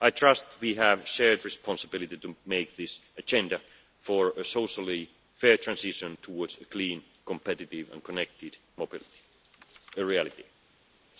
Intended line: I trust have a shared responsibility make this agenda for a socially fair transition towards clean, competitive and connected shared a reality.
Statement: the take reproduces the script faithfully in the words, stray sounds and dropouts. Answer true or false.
false